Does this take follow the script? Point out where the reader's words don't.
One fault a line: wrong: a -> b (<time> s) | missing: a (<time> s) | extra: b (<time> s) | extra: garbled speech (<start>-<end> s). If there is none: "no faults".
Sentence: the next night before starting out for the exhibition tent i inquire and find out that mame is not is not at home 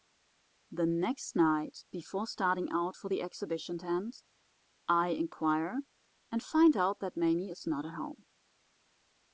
missing: is not (7.9 s)